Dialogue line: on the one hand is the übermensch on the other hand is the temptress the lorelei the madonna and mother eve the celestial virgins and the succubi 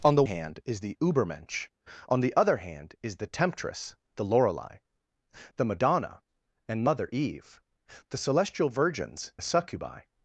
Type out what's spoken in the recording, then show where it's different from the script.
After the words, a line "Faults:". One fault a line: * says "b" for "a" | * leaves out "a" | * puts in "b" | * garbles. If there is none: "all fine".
on the hand is the übermensch on the other hand is the temptress the lorelei the madonna and mother eve the celestial virgins the succubi
Faults:
* leaves out "one"
* leaves out "and"